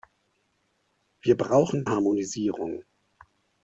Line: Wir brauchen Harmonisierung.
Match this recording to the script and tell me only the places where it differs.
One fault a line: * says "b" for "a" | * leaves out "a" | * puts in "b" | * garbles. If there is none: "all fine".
all fine